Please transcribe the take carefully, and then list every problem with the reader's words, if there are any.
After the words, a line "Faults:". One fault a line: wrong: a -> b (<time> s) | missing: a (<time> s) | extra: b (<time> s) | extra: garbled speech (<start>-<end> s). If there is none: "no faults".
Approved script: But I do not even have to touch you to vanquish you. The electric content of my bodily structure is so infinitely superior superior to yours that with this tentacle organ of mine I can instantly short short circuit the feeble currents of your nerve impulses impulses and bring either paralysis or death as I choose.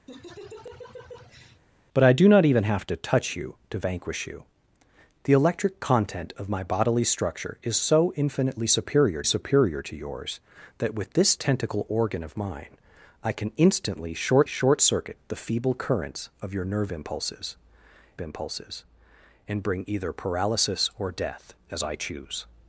But I do not even have to touch you to vanquish you. The electric content of my bodily structure is so infinitely superior superior to yours that with this tentacle organ of mine I can instantly short short circuit the feeble currents of your nerve impulses impulses and bring either paralysis or death as I choose.
Faults:
no faults